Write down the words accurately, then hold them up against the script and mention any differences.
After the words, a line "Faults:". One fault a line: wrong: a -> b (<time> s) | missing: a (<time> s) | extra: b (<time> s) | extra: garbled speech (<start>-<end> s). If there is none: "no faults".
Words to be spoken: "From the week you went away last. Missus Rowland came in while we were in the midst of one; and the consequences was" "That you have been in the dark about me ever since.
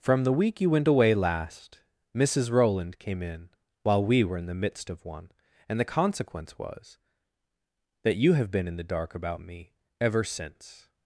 "From the week you went away last. Missus Rowland came in while we were in the midst of one; and the consequence was" "That you have been in the dark about me ever since.
Faults:
wrong: consequences -> consequence (5.8 s)